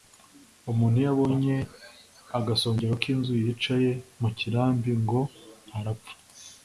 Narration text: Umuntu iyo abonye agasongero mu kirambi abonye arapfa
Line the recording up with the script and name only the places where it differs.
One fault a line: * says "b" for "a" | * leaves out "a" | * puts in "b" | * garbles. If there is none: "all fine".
* puts in "k'inzu yicaye"
* says "ngo" for "abonye"